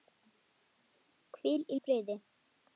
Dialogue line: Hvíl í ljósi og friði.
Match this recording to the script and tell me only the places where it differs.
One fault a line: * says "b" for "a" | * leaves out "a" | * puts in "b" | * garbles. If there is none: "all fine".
* leaves out "ljósi"